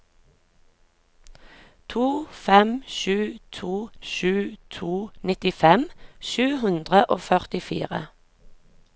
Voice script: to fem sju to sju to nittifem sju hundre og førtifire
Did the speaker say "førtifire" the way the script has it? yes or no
yes